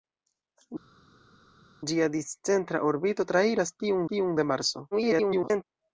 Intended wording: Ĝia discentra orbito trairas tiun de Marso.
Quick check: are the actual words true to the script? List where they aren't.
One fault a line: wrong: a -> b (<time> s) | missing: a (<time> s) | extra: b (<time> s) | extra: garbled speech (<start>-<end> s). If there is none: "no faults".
extra: tiun (4.1 s)
extra: garbled speech (4.9-5.6 s)